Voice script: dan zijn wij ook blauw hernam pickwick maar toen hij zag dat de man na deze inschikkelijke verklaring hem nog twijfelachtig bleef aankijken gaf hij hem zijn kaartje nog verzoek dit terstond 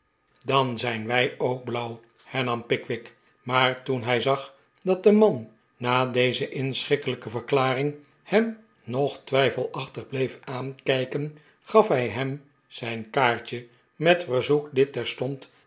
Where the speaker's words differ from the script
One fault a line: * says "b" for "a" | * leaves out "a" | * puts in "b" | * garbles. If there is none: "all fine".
* says "met" for "nog"